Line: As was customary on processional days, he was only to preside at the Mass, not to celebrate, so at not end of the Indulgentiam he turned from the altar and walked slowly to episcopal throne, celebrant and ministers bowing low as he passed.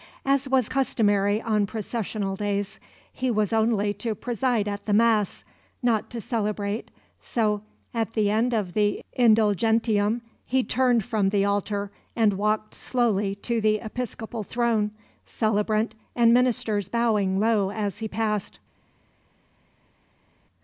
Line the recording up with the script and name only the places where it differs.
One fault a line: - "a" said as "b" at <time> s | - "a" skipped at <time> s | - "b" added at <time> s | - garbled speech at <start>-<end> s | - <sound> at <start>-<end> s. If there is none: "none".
- "not" said as "the" at 8.1 s
- "the" added at 13.6 s